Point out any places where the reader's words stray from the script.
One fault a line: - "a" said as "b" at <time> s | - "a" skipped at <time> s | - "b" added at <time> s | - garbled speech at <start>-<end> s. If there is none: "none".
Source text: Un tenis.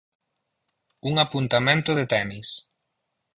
- "apuntamento de" added at 1.2 s